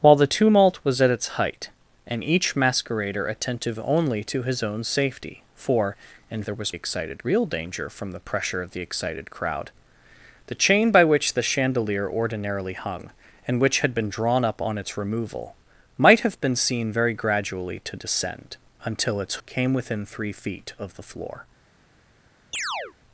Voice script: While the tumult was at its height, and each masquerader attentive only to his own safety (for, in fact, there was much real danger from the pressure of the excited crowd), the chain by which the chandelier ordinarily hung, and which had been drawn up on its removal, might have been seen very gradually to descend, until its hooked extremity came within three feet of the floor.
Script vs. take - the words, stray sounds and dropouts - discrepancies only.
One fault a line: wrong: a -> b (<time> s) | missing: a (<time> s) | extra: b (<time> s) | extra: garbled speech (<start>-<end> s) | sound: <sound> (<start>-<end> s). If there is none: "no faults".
missing: fact (6.4 s)
wrong: much -> excited (6.7 s)
missing: hooked extremity (19.4 s)
sound: chirp (22.5-22.9 s)